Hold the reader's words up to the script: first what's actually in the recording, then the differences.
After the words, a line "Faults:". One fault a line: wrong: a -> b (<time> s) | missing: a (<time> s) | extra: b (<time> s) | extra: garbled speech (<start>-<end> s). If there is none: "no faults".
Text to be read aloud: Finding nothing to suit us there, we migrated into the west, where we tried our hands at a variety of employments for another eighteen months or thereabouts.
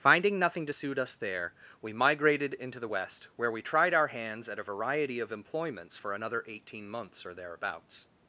Finding nothing to suit us there, we migrated into the west, where we tried our hands at a variety of employments for another eighteen months or thereabouts.
Faults:
no faults